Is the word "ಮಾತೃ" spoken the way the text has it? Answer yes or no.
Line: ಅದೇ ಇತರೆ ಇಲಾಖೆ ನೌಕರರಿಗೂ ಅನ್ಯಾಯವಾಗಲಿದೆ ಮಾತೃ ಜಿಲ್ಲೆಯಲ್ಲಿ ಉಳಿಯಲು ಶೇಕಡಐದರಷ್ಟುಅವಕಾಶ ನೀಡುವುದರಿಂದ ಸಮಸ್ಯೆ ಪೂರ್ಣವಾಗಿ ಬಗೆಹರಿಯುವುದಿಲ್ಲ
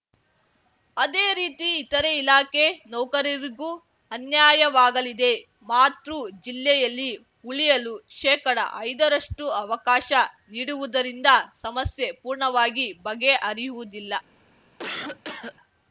yes